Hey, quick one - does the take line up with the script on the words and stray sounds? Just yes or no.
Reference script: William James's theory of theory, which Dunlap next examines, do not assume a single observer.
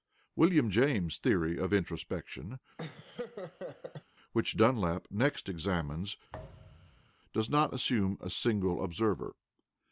no